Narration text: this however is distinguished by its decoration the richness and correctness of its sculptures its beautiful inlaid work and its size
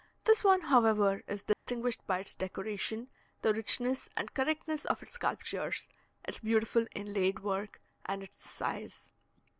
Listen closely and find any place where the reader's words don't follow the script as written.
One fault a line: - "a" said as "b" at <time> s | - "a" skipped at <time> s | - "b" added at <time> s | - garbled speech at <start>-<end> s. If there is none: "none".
- "one" added at 0.4 s